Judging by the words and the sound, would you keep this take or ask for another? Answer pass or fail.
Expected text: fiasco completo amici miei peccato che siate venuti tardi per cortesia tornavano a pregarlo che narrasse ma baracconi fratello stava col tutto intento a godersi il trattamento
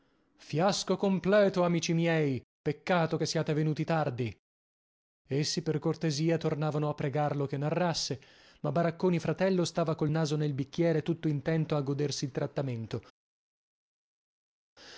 fail